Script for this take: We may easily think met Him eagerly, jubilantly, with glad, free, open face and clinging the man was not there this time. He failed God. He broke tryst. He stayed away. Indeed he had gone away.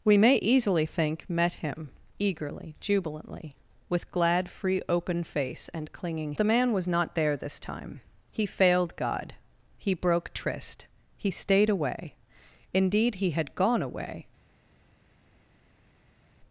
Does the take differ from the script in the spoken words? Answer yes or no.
no